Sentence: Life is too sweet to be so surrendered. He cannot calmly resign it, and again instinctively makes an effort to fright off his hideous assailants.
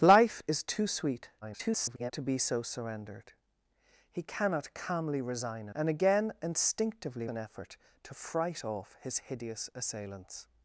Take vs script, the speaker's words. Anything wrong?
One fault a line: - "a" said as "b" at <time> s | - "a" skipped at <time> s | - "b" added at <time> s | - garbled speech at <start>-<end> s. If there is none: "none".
- garbled speech at 1.4-2.1 s
- "it" skipped at 5.7 s
- "makes" skipped at 7.3 s